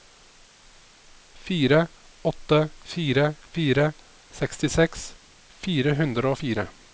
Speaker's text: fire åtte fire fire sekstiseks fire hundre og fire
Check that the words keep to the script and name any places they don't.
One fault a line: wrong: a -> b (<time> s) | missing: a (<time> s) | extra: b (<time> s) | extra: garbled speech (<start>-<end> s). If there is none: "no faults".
no faults